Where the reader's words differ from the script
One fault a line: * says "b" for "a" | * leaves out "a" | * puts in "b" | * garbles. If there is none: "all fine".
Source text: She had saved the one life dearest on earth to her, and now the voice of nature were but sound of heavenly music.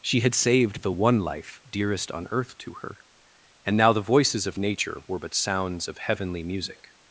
* says "voices" for "voice"
* says "sounds" for "sound"